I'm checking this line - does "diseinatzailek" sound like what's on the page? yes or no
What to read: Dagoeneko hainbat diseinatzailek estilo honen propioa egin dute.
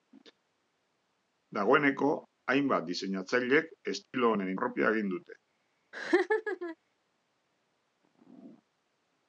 yes